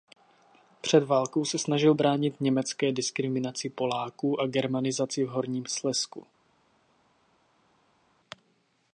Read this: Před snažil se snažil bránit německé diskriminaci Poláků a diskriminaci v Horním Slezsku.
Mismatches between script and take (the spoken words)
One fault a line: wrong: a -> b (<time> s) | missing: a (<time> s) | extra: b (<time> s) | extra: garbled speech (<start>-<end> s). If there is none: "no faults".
wrong: snažil -> válkou (1.0 s)
wrong: diskriminaci -> germanizaci (4.5 s)